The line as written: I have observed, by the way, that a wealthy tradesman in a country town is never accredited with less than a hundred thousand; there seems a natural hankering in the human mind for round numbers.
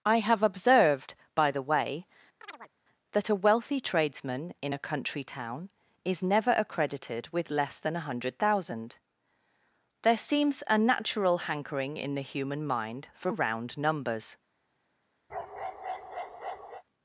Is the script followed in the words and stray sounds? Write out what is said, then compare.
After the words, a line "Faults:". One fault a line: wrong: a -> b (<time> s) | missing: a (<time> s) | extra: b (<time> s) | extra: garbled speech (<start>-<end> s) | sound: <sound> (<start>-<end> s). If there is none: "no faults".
I have observed, by the way, that a wealthy tradesman in a country town is never accredited with less than a hundred thousand; there seems a natural hankering in the human mind for round numbers.
Faults:
sound: chirp (2.4-2.7 s)
sound: bark (15.3-16.8 s)